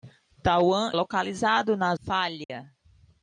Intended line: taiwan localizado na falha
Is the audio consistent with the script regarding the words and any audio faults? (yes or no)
no